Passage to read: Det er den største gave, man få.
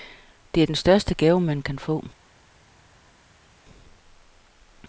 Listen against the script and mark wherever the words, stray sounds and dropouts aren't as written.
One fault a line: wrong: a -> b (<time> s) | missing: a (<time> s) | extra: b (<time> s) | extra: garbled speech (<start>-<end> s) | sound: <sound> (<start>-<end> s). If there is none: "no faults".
extra: kan (1.6 s)